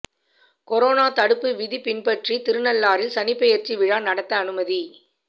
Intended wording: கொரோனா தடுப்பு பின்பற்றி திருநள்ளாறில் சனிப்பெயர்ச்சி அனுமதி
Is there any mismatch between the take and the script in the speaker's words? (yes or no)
yes